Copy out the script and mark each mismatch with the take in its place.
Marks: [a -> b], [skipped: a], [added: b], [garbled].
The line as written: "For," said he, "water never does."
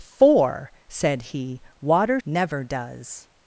"For," said he, "water never does."